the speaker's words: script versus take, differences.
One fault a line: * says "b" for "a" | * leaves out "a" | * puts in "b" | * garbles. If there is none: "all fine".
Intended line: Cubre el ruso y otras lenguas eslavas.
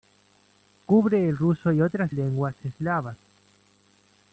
all fine